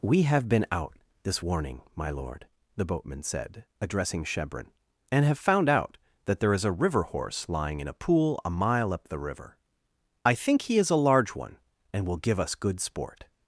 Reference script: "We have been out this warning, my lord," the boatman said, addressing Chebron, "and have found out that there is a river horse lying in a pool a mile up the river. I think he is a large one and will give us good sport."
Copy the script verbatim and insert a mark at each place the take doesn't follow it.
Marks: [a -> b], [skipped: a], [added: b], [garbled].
"We have been out this warning, my lord," the boatman said, addressing Chebron, "and have found out that there is a river horse lying in a pool a mile up the river. I think he is a large one and will give us good sport."